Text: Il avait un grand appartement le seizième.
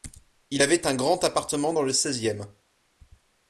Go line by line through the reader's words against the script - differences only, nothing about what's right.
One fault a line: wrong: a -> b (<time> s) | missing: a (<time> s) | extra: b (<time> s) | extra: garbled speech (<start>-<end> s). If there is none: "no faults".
extra: dans (1.7 s)